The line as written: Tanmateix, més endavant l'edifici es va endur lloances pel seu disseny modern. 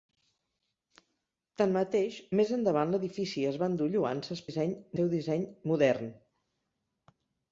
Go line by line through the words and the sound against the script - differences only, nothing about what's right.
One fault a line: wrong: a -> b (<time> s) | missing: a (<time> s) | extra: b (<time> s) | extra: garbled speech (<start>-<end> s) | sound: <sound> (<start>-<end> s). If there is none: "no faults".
wrong: pel -> disseny (4.5 s)